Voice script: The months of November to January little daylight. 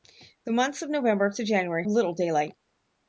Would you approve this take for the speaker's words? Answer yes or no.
yes